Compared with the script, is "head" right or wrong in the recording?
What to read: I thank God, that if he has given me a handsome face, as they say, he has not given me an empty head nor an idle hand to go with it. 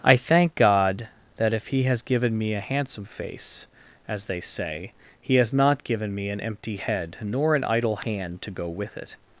right